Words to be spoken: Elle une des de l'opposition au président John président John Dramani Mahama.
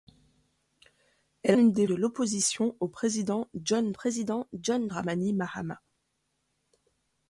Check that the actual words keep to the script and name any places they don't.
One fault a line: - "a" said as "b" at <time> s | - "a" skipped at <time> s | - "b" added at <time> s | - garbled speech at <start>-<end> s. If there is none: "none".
none